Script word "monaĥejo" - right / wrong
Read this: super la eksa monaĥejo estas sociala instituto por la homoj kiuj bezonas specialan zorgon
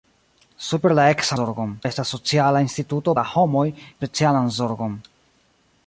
wrong